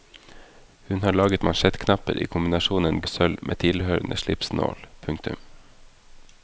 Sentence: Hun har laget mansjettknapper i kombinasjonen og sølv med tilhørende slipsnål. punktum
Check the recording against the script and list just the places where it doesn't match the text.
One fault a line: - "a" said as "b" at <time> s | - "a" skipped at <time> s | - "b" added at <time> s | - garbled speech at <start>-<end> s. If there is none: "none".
none